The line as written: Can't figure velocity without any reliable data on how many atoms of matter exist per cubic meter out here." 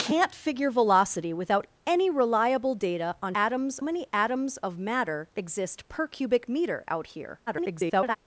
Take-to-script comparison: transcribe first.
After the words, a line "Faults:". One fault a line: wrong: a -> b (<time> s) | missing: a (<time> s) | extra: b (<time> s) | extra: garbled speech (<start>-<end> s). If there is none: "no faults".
Can't figure velocity without any reliable data on atoms many atoms of matter exist per cubic meter out here." [garbled]
Faults:
wrong: how -> atoms (3.3 s)
extra: garbled speech (7.5-8.2 s)